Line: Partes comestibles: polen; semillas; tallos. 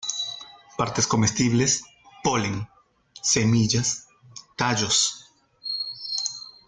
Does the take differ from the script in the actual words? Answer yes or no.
no